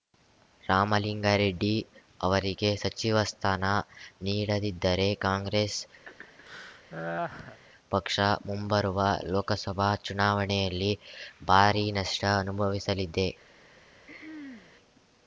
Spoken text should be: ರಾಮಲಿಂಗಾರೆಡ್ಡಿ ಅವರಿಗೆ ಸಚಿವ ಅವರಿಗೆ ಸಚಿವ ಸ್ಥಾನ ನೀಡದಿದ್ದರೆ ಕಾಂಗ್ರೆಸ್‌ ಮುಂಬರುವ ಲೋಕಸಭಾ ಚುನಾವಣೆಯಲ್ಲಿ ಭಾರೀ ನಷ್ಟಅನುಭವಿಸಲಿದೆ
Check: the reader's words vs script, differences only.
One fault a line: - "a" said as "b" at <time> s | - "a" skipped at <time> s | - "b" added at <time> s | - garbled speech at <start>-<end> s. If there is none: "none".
- "ಅವರಿಗೆ ಸಚಿವ" skipped at 3.2 s
- "ಪಕ್ಷ" added at 7.9 s